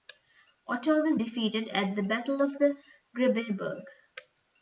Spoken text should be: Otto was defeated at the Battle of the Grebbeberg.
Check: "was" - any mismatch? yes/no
no